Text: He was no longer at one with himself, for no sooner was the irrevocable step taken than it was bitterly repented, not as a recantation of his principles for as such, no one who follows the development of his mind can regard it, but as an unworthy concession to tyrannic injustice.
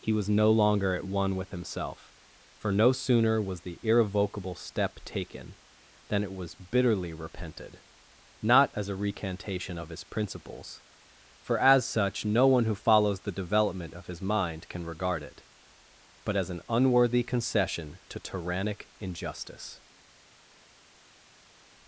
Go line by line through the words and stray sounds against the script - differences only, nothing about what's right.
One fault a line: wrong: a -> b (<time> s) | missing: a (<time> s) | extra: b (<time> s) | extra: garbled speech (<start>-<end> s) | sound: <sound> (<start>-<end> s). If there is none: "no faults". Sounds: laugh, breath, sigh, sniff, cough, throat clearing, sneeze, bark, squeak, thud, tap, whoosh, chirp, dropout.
no faults